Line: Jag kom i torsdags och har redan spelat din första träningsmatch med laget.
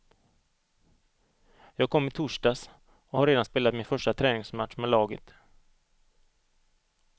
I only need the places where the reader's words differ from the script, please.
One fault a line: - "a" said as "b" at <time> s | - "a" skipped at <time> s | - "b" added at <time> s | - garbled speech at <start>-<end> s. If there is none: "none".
- "din" said as "min" at 3.7 s